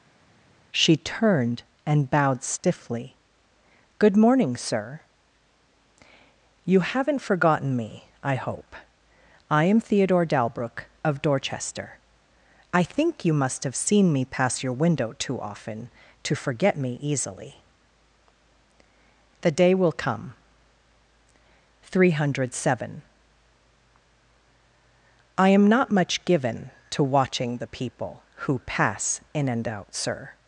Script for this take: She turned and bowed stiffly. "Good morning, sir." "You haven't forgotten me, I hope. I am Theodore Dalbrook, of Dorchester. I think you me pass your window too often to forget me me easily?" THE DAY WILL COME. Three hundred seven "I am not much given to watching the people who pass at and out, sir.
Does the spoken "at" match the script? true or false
false